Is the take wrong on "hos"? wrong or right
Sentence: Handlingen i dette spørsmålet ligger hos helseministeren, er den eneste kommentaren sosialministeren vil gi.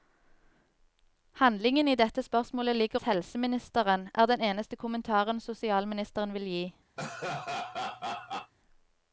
wrong